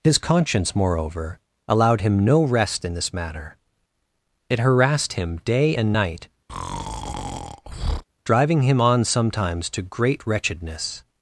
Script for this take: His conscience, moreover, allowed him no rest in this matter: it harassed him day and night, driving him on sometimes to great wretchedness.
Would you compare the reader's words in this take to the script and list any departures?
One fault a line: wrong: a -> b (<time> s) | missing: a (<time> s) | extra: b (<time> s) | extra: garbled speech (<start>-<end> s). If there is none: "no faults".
no faults